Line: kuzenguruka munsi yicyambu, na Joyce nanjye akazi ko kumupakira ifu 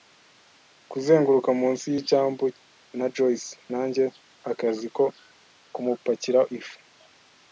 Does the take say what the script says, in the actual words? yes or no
yes